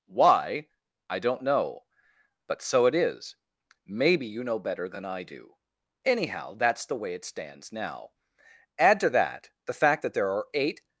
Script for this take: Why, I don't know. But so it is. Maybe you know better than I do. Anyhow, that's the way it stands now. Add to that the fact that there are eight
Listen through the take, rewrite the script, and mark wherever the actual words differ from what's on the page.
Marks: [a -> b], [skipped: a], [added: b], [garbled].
Why, I don't know. But so it is. Maybe you know better than I do. Anyhow, that's the way it stands now. Add to that the fact that there are eight